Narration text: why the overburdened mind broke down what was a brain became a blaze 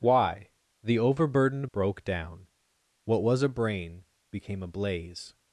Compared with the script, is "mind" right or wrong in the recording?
wrong